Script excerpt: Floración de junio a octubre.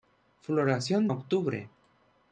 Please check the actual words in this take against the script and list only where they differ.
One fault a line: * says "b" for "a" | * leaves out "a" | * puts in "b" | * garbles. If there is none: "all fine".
* leaves out "de junio"